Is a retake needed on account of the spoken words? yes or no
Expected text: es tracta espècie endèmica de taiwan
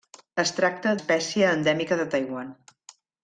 no